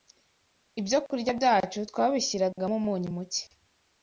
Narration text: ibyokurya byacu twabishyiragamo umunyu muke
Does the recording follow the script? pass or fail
pass